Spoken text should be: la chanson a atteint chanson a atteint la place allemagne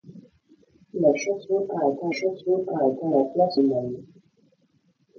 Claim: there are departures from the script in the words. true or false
false